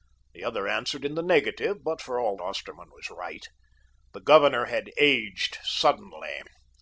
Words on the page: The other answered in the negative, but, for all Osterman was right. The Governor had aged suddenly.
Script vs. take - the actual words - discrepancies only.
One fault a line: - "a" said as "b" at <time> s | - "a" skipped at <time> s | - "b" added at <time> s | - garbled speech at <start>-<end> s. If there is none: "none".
none